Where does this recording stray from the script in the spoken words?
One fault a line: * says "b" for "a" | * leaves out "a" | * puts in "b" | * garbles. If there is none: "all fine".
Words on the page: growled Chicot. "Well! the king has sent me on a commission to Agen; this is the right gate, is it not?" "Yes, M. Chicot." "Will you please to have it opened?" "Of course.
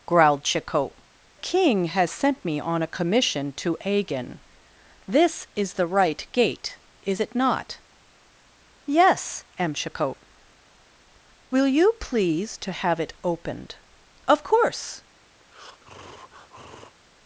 * leaves out "Well the"